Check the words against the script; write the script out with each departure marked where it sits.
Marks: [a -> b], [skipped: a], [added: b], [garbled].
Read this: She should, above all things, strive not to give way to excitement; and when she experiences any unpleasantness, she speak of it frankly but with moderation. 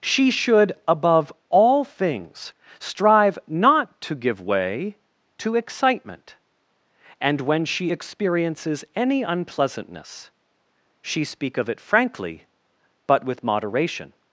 She should, above all things, strive not to give way to excitement; and when she experiences any unpleasantness, she speak of it frankly but with moderation.